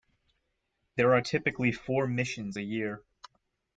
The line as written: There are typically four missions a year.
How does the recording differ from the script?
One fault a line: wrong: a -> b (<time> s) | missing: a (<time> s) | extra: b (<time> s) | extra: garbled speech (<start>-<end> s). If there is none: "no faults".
no faults